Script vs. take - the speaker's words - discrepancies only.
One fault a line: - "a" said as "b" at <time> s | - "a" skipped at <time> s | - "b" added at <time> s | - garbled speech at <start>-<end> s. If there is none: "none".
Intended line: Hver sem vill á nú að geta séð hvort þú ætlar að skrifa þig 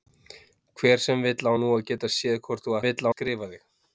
- "ætlar" said as "vill" at 2.8 s